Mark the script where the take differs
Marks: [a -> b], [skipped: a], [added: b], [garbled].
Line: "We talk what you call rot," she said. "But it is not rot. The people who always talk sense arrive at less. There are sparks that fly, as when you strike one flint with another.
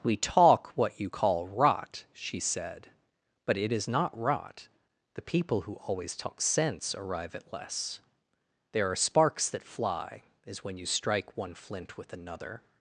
"We talk what you call rot," she said. "But it is not rot. The people who always talk sense arrive at less. There are sparks that fly, as when you strike one flint with another.